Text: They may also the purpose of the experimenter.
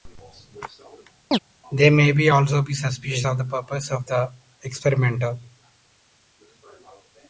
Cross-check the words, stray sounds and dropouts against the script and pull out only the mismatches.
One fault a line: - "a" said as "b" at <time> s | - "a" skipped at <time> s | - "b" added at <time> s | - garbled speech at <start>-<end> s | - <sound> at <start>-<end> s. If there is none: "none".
- chirp at 1.3-1.4 s
- "be suspicious of" added at 2.6 s